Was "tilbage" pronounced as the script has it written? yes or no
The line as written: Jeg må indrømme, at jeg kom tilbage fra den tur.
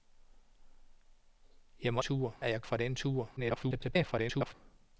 no